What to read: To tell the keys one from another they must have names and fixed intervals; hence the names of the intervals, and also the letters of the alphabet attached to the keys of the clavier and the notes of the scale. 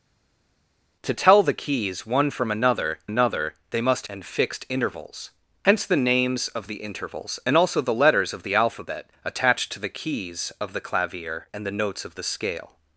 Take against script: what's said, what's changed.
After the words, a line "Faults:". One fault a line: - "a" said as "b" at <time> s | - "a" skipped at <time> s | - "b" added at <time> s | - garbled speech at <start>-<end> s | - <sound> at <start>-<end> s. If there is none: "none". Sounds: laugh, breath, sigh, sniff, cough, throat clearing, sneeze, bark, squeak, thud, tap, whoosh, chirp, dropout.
To tell the keys one from another another they must and fixed intervals; hence the names of the intervals, and also the letters of the alphabet attached to the keys of the clavier and the notes of the scale.
Faults:
- "another" added at 3.0 s
- "have names" skipped at 4.1 s